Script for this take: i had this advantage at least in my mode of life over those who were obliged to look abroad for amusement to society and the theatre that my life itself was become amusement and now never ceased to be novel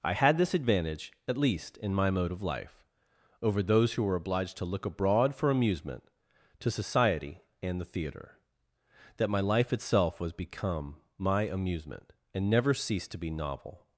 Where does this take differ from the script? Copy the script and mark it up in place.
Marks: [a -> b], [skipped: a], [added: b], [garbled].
i had this advantage at least in my mode of life over those who were obliged to look abroad for amusement to society and the theatre that my life itself was become [added: my] amusement and [skipped: now] never ceased to be novel